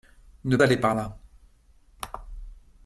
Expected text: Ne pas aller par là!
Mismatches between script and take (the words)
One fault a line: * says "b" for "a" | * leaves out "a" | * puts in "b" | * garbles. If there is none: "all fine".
* leaves out "pas"